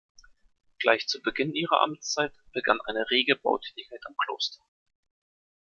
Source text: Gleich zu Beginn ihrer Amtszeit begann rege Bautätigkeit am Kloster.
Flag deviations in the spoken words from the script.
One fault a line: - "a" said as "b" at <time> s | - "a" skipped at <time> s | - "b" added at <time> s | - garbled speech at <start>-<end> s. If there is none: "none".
- "eine" added at 2.9 s